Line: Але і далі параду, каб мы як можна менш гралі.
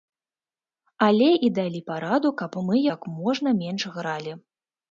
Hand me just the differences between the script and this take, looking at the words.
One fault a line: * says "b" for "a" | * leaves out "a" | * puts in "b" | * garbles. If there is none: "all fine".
all fine